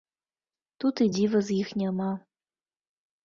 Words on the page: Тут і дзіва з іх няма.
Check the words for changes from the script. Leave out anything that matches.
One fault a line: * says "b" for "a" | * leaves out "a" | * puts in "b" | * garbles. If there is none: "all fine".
all fine